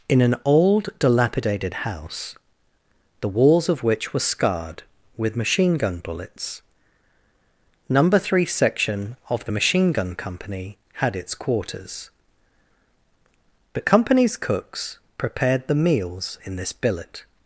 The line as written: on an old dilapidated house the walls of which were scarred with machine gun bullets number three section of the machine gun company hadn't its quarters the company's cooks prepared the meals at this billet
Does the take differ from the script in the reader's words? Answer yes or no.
yes